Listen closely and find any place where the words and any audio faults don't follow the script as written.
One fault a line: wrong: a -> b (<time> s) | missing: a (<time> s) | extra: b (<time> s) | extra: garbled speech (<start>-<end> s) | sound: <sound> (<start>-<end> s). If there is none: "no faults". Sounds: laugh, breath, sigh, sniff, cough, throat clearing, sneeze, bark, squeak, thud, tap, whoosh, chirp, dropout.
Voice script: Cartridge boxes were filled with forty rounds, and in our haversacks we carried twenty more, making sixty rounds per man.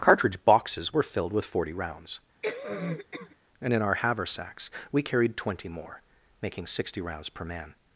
sound: cough (2.4-3.4 s)